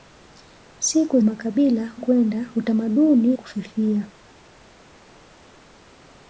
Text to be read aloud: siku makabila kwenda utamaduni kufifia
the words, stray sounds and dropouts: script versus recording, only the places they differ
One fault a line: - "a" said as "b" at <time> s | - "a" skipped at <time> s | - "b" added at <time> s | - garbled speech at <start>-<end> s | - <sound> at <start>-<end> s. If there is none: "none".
none